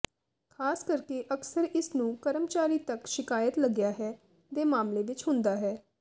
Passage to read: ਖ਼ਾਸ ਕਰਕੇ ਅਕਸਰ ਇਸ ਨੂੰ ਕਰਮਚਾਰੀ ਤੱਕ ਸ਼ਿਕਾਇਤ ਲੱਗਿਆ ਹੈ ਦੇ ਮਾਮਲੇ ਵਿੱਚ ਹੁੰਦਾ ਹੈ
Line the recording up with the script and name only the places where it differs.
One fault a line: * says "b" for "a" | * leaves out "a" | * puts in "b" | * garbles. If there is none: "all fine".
all fine